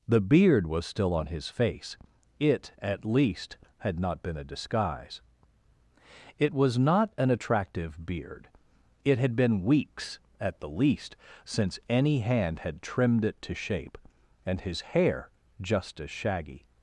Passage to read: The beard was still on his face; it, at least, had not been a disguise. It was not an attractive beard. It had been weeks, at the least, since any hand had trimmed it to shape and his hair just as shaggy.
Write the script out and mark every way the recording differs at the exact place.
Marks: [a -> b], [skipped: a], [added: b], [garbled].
The beard was still on his face; it, at least, had not been a disguise. It was not an attractive beard. It had been weeks, at the least, since any hand had trimmed it to shape and his hair just as shaggy.